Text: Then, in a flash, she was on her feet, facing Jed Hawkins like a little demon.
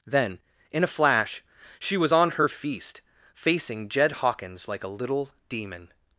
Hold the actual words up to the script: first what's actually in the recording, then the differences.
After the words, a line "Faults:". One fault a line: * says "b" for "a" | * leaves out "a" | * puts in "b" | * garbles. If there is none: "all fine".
Then, in a flash, she was on her feast, facing Jed Hawkins like a little demon.
Faults:
* says "feast" for "feet"